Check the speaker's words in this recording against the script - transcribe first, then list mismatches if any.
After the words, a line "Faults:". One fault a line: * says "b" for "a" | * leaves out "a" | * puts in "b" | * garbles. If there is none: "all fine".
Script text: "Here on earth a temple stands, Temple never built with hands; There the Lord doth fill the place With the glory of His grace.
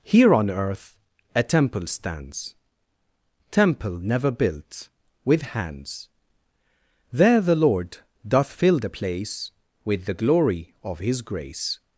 "Here on earth a temple stands, Temple never built with hands; There the Lord doth fill the place With the glory of His grace.
Faults:
all fine